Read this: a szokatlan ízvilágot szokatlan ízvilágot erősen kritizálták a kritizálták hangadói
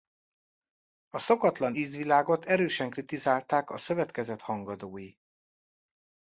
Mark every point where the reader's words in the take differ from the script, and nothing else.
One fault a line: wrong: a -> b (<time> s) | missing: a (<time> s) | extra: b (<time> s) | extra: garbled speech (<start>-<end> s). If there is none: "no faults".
missing: szokatlan ízvilágot (2.4 s)
wrong: kritizálták -> szövetkezet (3.8 s)